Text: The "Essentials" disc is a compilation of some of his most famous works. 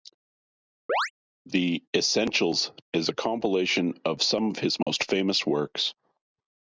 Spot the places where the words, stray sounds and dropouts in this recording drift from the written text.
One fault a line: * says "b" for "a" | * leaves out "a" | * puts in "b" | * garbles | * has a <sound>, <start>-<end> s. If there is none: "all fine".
* has a chirp, 0.9-1.1 s
* leaves out "disc"
* has a dropout, 4.8-4.9 s